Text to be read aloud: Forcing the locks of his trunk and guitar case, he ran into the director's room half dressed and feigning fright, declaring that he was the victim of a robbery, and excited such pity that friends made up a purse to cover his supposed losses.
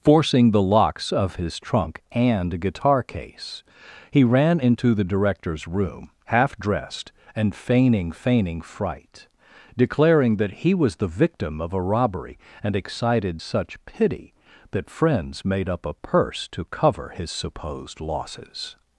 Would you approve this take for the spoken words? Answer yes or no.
no